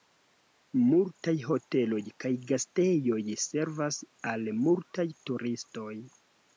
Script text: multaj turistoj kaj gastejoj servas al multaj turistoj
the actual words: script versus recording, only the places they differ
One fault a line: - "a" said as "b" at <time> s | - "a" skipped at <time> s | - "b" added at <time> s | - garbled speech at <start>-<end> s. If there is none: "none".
- "turistoj" said as "hoteloj" at 1.5 s